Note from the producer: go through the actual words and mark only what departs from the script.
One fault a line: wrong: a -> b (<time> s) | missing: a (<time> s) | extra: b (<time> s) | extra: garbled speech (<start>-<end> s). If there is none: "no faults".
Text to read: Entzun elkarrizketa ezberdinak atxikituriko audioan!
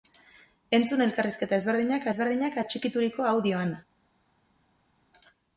extra: ezberdinak (2.1 s)